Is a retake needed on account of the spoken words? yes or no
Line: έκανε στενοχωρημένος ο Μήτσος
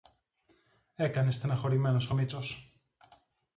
no